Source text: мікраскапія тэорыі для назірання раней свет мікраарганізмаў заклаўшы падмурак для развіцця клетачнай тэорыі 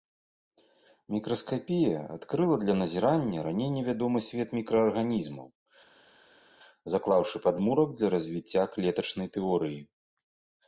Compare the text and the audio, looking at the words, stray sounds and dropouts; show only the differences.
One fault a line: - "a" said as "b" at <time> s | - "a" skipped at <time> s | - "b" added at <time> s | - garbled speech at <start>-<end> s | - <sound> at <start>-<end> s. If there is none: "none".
- "тэорыі" said as "адкрыла" at 2.1 s
- "невядомы" added at 3.8 s